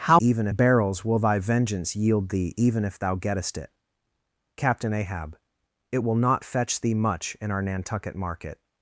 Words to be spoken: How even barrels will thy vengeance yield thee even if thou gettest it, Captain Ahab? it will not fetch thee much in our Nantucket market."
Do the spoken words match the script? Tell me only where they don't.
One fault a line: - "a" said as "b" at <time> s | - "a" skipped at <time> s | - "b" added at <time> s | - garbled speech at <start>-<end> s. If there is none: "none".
none